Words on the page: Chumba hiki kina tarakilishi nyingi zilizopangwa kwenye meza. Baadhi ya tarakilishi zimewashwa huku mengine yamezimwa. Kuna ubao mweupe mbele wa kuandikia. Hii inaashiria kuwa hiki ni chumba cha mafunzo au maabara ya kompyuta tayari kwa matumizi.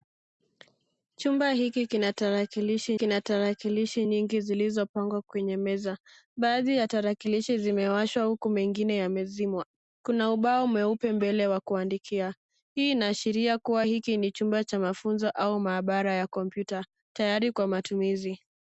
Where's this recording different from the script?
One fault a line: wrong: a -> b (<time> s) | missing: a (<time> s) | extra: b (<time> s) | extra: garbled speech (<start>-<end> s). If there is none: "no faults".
extra: kina tarakilishi (3.0 s)